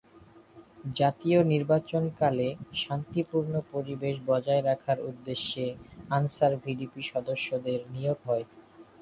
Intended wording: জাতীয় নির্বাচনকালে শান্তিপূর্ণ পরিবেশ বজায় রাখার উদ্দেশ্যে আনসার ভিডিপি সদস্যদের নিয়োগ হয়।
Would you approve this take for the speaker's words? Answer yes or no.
yes